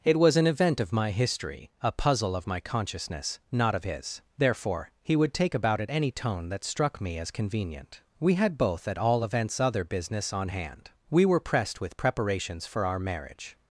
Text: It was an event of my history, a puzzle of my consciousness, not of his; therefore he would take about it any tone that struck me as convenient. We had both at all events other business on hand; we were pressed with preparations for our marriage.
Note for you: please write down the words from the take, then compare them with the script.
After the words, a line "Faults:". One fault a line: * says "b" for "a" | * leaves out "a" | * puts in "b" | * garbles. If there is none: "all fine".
It was an event of my history, a puzzle of my consciousness, not of his; therefore he would take about it any tone that struck me as convenient. We had both at all events other business on hand; we were pressed with preparations for our marriage.
Faults:
all fine